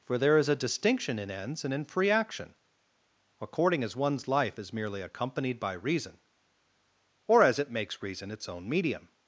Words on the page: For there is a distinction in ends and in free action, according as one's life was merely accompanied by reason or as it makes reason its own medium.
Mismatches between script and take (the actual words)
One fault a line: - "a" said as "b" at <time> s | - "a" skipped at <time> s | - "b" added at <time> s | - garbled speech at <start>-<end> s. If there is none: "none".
- "was" said as "is" at 4.6 s